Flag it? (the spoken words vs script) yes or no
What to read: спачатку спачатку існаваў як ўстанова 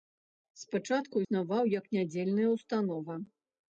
yes